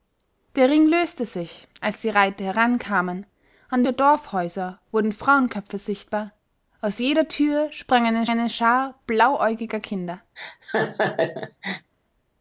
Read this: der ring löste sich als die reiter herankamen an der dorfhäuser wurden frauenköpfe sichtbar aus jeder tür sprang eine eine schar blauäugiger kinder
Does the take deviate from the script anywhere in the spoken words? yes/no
no